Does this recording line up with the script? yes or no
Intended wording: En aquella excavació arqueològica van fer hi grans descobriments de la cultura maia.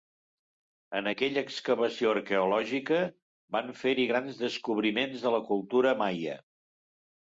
yes